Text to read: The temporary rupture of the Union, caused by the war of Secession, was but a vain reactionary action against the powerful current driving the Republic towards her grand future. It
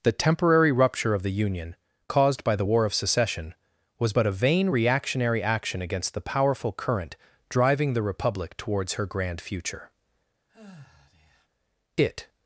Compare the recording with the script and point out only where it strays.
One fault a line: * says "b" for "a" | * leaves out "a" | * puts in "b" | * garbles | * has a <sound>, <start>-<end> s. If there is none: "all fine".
* has a sigh, 10.5-11.5 s